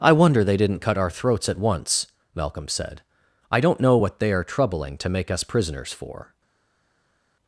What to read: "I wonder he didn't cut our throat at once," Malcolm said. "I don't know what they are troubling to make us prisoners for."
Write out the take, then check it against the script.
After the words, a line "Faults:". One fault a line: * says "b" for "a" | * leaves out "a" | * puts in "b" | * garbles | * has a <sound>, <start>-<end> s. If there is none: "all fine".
"I wonder they didn't cut our throats at once," Malcolm said. "I don't know what they are troubling to make us prisoners for."
Faults:
* says "they" for "he"
* says "throats" for "throat"